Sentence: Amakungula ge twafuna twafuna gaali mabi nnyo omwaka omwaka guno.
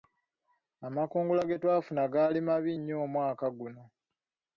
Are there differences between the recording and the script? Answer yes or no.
yes